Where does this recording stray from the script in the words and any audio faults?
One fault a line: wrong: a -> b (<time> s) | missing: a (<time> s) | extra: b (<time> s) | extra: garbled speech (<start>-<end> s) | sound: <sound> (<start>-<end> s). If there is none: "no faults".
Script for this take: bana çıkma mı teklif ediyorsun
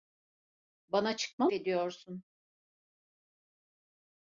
missing: mı teklif (1.4 s)